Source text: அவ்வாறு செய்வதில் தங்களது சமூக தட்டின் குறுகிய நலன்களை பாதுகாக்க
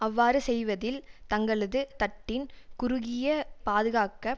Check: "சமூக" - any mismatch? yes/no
yes